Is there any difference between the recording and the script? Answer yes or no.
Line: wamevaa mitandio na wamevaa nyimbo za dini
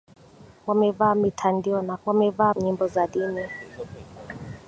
no